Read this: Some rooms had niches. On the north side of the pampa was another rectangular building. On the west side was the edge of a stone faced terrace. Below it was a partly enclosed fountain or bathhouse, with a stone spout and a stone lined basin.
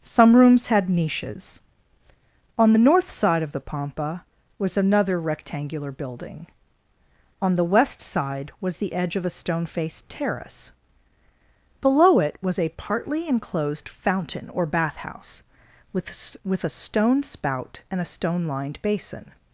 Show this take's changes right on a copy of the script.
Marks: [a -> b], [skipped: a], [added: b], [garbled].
Some rooms had niches. On the north side of the pampa was another rectangular building. On the west side was the edge of a stone faced terrace. Below it was a partly enclosed fountain or bathhouse, with [added: with] a stone spout and a stone lined basin.